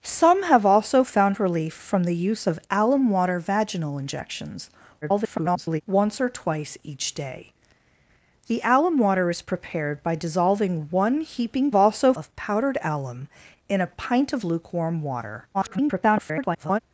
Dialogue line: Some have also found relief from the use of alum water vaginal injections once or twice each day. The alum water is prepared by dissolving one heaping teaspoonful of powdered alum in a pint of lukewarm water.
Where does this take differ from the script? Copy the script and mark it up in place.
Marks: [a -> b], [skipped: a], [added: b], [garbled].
Some have also found relief from the use of alum water vaginal injections [garbled] once or twice each day. The alum water is prepared by dissolving one heaping [teaspoonful -> also] of powdered alum in a pint of lukewarm water. [garbled]